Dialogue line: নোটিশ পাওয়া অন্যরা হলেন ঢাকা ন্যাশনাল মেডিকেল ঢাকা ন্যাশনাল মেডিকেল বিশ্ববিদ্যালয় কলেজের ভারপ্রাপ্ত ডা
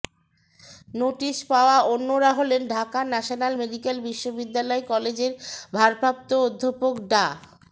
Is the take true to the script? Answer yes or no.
no